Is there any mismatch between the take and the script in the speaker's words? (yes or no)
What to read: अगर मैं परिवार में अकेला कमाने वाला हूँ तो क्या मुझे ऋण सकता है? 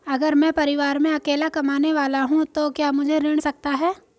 no